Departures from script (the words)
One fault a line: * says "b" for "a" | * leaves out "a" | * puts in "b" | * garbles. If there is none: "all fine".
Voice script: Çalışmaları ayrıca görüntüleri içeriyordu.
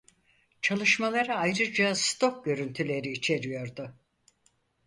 * puts in "stok"